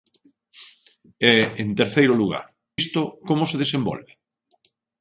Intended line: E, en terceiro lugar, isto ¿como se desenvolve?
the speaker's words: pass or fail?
pass